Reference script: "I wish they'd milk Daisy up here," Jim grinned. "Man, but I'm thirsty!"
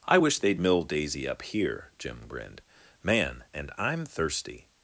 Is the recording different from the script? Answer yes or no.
yes